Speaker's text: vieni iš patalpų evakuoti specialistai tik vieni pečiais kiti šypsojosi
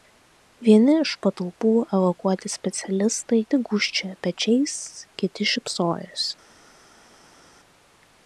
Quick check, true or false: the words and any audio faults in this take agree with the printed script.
false